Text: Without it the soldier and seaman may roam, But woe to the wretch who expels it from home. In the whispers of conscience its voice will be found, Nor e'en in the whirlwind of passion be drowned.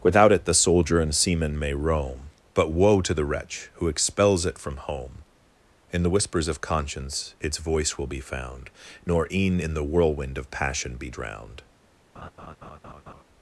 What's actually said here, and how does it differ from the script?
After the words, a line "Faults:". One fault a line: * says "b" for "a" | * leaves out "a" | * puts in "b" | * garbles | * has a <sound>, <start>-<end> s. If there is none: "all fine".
Without it the soldier and seaman may roam, But woe to the wretch who expels it from home. In the whispers of conscience its voice will be found, Nor e'en in the whirlwind of passion be drowned.
Faults:
* has a laugh, 12.2-13.2 s